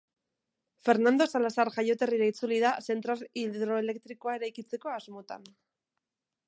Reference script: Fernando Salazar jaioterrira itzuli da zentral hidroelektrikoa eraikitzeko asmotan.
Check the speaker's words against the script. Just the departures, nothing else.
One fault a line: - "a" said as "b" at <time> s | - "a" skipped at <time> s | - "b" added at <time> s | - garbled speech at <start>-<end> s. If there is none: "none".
none